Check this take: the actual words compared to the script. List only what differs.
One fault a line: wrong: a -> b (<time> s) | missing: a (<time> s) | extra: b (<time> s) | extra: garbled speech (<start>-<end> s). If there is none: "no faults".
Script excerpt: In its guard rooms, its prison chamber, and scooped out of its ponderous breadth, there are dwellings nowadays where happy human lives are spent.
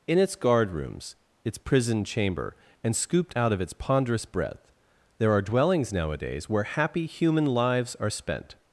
no faults